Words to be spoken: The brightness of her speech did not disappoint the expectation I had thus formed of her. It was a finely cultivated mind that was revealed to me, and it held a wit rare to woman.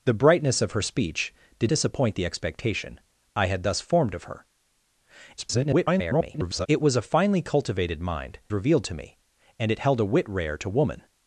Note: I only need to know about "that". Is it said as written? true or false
false